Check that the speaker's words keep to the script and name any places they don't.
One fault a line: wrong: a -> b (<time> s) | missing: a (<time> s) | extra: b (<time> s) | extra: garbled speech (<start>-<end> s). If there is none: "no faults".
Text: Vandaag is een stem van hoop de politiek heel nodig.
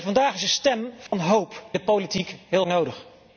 no faults